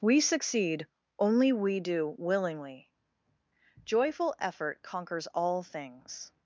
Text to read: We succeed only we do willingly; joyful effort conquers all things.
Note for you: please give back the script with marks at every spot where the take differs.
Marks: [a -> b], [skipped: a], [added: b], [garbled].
We succeed only we do willingly; joyful effort conquers all things.